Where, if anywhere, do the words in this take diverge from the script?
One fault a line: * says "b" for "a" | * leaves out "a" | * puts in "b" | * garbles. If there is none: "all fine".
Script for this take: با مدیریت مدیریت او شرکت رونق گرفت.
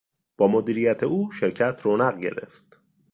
* leaves out "مدیریت"